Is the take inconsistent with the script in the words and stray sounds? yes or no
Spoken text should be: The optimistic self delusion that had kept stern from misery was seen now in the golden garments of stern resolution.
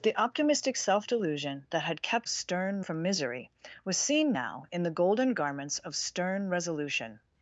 no